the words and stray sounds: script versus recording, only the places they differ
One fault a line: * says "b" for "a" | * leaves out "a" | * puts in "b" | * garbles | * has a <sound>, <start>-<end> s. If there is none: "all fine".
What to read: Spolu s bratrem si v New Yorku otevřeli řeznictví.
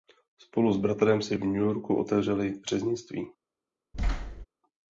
* has a thud, 3.9-4.5 s